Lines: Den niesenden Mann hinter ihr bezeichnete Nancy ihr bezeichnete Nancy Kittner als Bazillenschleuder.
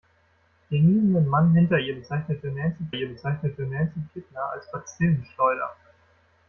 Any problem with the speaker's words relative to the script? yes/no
no